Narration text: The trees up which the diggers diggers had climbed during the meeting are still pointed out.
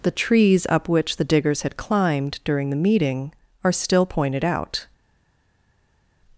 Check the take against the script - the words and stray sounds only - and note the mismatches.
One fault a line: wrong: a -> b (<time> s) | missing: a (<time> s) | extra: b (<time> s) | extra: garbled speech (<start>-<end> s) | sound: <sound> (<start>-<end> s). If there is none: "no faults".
missing: diggers (1.6 s)